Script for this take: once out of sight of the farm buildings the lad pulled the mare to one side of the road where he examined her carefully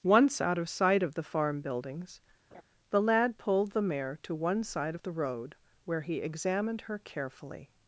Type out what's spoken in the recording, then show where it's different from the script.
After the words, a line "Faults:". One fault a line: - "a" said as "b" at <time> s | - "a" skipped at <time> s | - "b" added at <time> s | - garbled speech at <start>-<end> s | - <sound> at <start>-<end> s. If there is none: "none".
once out of sight of the farm buildings the lad pulled the mare to one side of the road where he examined her carefully
Faults:
- laugh at 2.5-2.6 s